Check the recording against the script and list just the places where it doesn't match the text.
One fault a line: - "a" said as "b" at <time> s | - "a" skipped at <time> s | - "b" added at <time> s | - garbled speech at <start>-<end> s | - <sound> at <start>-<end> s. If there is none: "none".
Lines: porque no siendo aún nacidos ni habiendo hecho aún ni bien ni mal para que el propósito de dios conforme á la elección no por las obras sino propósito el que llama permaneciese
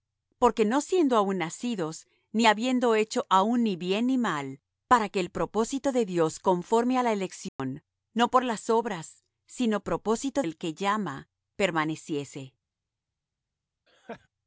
- dropout at 7.5-7.6 s
- laugh at 13.9-14.3 s